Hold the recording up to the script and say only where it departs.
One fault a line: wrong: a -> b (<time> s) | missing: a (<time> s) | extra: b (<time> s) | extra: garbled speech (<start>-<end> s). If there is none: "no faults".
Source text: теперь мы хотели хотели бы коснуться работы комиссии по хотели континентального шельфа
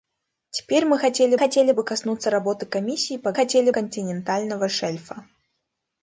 no faults